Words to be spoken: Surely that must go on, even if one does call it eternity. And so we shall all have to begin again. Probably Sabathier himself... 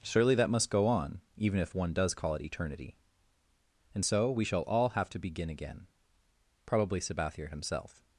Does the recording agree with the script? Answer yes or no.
yes